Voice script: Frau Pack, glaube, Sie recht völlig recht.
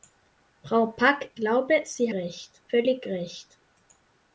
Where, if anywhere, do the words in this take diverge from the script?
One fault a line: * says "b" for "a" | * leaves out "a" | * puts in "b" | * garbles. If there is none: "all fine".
all fine